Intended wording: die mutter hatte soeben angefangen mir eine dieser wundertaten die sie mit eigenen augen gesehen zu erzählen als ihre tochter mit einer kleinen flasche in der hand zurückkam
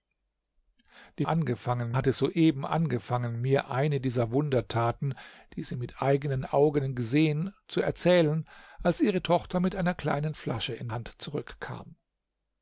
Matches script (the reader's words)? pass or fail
fail